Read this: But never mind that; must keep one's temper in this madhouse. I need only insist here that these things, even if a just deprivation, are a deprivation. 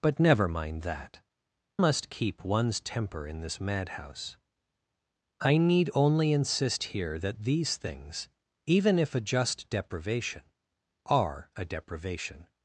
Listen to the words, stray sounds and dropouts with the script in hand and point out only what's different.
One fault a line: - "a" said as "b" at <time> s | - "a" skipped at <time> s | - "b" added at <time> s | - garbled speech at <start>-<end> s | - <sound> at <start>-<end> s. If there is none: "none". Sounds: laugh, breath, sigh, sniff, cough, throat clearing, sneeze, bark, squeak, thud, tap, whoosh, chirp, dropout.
none